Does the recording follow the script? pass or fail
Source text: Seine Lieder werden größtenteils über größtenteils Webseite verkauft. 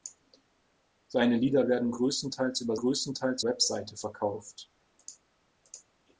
pass